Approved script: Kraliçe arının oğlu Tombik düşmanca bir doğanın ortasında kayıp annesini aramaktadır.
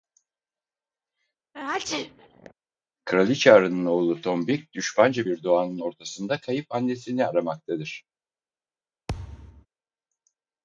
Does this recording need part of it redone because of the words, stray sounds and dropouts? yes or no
yes